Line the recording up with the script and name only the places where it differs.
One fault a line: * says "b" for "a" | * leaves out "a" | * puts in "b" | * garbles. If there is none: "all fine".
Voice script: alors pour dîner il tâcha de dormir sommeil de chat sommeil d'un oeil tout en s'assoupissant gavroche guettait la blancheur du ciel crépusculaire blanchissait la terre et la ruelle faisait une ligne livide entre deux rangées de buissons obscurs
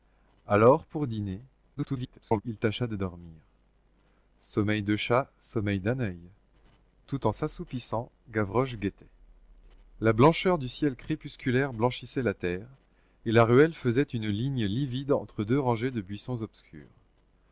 * garbles